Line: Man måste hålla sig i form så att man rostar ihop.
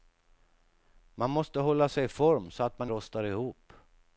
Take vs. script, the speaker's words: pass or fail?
pass